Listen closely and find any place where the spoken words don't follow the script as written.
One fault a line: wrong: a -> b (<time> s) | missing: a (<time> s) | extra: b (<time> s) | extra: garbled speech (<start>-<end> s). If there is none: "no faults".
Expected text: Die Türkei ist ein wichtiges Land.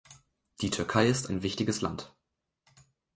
no faults